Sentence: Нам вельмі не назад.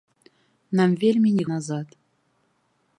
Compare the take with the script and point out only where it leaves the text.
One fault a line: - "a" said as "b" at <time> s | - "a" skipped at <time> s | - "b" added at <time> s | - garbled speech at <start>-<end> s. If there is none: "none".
none